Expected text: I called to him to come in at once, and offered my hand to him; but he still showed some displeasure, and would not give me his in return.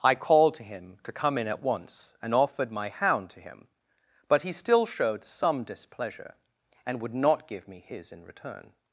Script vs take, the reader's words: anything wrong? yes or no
yes